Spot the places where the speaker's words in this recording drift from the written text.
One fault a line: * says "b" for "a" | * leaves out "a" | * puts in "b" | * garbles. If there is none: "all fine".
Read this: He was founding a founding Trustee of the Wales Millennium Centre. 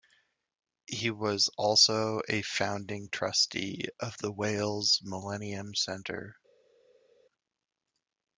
* says "also" for "founding"